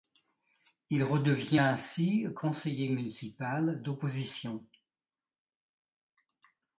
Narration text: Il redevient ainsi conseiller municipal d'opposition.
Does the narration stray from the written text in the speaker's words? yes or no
no